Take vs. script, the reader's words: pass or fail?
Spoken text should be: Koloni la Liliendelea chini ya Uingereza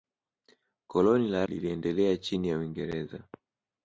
pass